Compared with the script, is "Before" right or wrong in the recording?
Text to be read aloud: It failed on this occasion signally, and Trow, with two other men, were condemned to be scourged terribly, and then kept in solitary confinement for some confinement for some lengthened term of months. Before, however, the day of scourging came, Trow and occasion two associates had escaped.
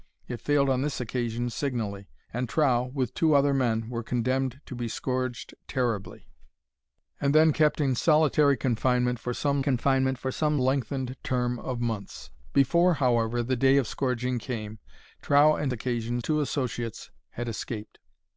right